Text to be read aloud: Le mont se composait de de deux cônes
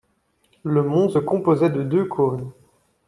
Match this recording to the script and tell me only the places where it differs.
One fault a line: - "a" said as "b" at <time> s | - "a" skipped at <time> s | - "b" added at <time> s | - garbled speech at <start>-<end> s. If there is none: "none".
- "de" skipped at 1.8 s